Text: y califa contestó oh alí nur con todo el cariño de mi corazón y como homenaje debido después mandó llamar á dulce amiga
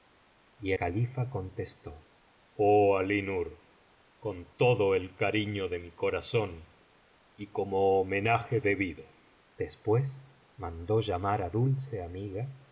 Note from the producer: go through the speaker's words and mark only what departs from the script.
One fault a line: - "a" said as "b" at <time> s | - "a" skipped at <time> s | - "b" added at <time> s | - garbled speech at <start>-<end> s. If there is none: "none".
none